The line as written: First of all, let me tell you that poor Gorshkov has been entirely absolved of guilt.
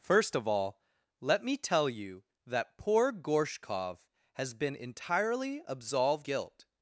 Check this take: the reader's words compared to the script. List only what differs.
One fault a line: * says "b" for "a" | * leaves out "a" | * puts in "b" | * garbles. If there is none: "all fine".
* leaves out "of"